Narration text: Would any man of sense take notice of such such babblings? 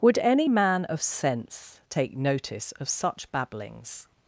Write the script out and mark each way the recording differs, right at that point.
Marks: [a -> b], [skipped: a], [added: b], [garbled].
Would any man of sense take notice of such [skipped: such] babblings?